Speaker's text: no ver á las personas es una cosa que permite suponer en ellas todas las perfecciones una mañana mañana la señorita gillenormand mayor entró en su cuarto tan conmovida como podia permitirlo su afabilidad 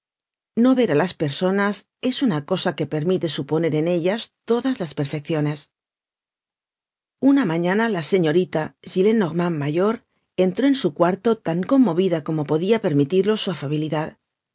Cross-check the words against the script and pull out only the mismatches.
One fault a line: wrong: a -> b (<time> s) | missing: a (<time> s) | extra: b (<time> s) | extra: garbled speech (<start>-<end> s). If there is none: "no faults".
missing: mañana (7.9 s)